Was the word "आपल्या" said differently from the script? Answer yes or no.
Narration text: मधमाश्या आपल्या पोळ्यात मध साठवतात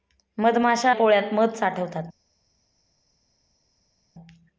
yes